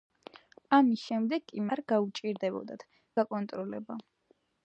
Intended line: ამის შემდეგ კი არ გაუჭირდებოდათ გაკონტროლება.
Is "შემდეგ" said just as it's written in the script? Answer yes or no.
yes